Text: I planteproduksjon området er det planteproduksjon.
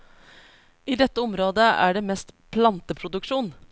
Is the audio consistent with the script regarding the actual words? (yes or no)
no